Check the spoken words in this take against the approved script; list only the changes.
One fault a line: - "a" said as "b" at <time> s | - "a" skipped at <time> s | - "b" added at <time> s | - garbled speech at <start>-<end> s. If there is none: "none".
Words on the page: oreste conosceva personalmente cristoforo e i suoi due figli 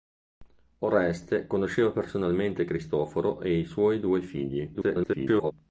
- garbled speech at 4.7-5.5 s